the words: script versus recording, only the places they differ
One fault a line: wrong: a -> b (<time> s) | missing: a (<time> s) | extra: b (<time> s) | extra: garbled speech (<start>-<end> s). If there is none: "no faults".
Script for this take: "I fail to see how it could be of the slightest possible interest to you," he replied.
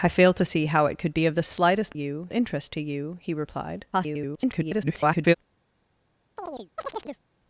wrong: possible -> you (1.9 s)
extra: garbled speech (3.9-5.3 s)